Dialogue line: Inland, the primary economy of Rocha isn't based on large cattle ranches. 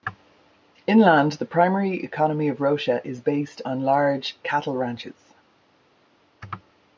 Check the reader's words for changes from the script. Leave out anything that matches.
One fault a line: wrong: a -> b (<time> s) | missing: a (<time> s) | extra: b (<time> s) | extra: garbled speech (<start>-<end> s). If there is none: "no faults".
wrong: isn't -> is (3.1 s)